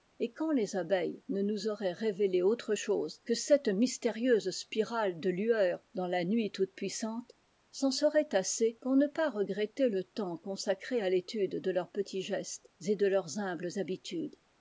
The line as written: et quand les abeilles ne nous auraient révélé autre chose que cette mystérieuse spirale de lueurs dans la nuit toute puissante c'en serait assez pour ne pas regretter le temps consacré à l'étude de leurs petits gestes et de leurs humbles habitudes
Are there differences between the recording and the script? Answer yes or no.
no